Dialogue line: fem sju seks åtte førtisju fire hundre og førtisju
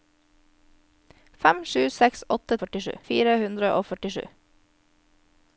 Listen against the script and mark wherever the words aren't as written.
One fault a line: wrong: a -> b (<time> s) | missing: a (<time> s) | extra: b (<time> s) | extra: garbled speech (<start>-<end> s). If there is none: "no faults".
no faults